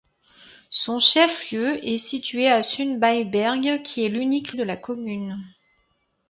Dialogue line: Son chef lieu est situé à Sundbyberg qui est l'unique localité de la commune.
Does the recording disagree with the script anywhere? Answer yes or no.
yes